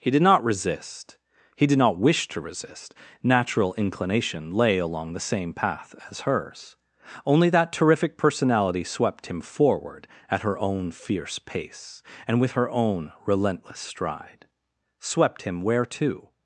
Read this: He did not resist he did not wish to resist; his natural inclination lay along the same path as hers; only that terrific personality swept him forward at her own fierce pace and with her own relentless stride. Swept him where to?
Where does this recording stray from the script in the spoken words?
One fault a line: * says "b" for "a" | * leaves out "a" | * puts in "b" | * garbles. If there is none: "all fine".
* leaves out "his"